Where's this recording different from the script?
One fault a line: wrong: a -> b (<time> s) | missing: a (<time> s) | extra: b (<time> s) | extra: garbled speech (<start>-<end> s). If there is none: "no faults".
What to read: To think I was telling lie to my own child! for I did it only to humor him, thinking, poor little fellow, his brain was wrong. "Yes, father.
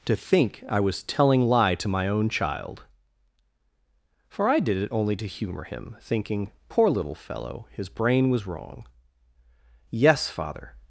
no faults